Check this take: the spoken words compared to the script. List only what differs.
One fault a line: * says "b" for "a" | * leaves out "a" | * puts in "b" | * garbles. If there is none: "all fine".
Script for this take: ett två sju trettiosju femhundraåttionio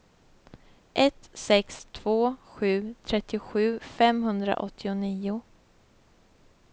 * puts in "sex"